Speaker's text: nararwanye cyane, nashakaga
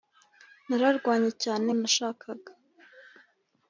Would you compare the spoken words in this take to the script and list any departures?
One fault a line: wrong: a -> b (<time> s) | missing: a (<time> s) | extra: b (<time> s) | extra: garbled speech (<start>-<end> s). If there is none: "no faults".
no faults